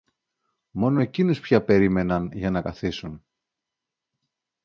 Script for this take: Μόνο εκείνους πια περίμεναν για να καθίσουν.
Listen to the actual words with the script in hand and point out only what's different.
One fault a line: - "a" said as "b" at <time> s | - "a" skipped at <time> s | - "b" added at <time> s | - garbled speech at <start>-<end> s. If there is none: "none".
none